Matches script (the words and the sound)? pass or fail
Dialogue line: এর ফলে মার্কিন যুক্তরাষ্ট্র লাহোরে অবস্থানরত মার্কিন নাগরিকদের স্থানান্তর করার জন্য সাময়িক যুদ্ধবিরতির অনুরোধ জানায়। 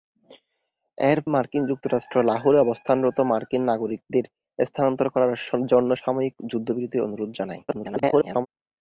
fail